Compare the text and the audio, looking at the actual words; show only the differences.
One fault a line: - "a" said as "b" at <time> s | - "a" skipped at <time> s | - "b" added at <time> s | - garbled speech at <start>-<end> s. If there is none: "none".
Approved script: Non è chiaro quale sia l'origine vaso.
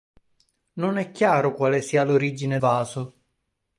none